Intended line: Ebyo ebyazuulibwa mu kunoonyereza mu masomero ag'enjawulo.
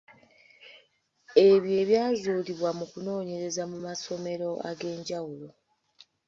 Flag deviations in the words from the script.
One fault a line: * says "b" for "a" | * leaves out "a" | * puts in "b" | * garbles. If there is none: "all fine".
all fine